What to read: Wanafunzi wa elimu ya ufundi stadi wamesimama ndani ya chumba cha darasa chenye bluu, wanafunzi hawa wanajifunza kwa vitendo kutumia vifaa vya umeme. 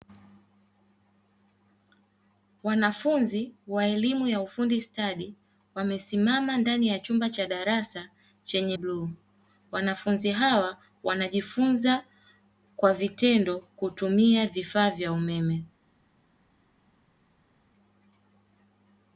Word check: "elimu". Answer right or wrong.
right